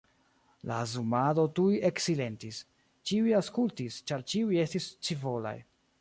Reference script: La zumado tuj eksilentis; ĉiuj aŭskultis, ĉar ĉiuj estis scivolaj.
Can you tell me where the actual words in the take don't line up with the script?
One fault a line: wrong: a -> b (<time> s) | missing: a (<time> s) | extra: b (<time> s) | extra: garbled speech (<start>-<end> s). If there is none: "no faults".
no faults